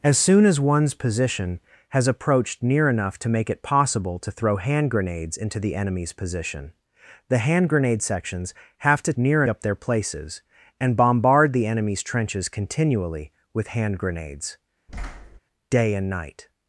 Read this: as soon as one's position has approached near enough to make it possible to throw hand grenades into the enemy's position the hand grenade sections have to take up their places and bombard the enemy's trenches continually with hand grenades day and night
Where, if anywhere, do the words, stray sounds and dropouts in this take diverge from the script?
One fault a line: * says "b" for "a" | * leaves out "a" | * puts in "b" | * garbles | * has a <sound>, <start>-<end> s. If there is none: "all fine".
* says "near" for "take"
* has a thud, 14.9-15.4 s